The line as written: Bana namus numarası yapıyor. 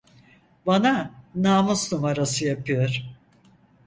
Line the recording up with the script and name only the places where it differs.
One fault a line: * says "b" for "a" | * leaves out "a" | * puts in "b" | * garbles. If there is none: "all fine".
all fine